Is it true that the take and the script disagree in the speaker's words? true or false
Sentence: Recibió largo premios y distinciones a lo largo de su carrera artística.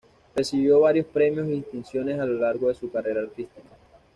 true